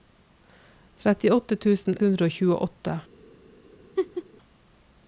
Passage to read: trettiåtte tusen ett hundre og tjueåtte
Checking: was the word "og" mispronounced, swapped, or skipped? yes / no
no